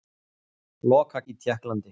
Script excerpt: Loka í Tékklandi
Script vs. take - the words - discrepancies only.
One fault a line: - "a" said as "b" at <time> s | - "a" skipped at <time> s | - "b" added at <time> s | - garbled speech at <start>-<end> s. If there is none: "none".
none